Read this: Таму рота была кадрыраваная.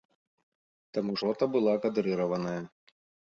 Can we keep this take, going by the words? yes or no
yes